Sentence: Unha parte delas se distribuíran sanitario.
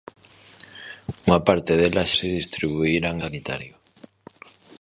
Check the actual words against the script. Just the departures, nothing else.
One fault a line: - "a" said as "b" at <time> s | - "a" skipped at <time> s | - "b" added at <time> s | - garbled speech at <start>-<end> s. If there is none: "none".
none